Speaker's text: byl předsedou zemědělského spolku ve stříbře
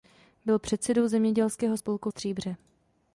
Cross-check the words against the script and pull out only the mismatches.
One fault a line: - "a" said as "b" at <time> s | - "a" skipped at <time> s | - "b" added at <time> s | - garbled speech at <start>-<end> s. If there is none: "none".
- "ve" skipped at 2.1 s